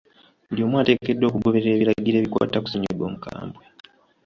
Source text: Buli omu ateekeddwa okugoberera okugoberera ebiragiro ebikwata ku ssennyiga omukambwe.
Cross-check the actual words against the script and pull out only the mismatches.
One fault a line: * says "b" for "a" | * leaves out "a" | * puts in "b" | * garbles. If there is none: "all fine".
* leaves out "okugoberera"